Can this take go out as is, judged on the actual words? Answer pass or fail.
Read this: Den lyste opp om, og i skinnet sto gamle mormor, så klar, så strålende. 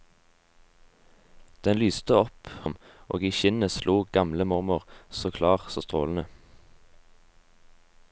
pass